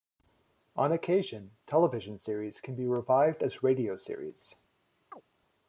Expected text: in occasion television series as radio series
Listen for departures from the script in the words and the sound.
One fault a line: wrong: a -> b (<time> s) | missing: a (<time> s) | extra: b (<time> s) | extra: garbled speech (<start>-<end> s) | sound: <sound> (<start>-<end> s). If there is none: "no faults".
wrong: in -> on (0.8 s)
extra: can be revived (2.6 s)
sound: chirp (5.1-5.2 s)